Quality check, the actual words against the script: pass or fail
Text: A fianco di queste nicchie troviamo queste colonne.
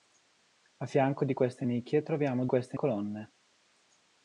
pass